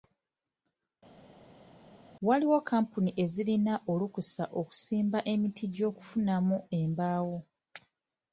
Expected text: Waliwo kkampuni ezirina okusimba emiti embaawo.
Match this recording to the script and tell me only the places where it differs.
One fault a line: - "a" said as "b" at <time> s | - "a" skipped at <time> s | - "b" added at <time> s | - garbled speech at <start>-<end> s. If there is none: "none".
- "olukusa" added at 3.9 s
- "gy'okufunamu" added at 5.7 s